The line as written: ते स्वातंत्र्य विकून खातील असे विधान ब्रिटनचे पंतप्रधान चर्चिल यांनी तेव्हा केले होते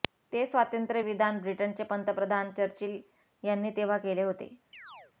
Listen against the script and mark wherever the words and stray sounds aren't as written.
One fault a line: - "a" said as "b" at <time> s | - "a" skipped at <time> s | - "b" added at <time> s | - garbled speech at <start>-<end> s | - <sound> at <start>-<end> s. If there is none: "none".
- "विकून खातील असे" skipped at 1.0 s
- chirp at 4.7-5.1 s